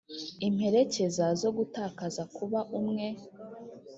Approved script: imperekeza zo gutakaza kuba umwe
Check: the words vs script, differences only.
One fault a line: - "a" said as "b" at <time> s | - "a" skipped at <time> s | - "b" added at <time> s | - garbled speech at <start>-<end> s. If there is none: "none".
none